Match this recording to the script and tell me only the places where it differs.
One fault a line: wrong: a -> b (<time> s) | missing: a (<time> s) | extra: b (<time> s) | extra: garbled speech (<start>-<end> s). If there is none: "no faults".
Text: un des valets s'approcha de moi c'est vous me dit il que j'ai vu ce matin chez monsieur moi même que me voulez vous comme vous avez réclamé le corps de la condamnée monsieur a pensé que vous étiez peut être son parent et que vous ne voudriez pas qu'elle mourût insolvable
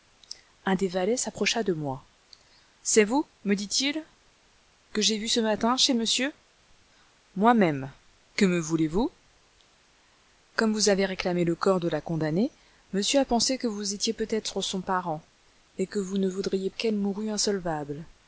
missing: pas (16.7 s)